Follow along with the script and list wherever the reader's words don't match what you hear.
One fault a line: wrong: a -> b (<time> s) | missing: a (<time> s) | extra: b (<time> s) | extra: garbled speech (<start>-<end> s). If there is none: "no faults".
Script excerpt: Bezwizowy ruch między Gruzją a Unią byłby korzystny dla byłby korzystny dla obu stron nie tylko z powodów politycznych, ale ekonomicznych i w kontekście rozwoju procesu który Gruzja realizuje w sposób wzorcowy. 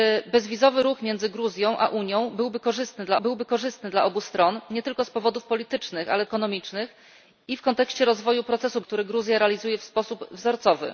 no faults